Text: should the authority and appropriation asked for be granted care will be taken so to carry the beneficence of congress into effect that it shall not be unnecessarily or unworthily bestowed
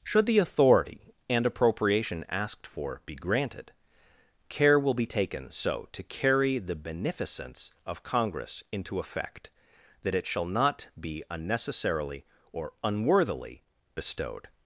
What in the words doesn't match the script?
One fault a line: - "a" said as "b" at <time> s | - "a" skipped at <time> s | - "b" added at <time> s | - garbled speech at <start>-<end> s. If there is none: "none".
none